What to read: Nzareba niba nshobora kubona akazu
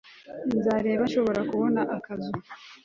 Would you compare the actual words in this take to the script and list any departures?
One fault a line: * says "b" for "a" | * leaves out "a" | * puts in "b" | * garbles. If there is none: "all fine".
* leaves out "niba"